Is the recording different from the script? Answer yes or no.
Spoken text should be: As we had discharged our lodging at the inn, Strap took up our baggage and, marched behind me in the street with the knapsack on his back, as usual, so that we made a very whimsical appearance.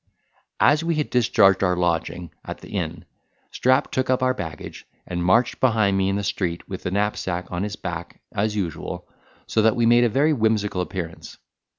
no